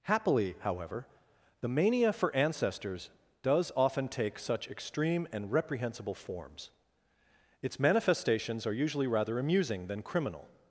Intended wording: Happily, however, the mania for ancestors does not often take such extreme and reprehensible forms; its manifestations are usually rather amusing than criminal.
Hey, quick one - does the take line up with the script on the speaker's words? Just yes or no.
no